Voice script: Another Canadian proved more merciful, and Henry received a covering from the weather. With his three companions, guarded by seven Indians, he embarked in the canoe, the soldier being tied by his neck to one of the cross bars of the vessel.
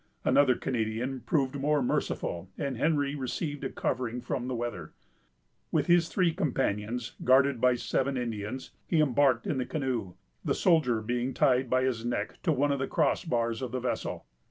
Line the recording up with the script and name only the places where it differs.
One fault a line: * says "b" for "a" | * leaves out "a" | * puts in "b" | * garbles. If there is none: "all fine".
all fine